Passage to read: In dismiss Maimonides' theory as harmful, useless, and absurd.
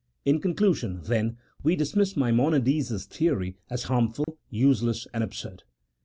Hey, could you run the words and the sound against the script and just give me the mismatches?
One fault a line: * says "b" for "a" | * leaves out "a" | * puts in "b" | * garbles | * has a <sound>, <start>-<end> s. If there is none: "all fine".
* puts in "conclusion then we"
* has a dropout, 4.2-4.3 s